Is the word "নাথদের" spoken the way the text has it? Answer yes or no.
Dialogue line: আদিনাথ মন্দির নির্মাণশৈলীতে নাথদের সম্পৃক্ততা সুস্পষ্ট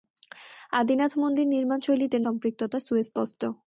no